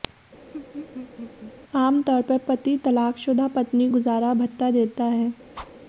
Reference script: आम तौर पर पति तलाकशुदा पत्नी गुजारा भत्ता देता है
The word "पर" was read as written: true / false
true